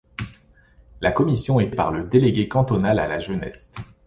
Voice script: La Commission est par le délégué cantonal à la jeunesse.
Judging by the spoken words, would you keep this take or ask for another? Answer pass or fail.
pass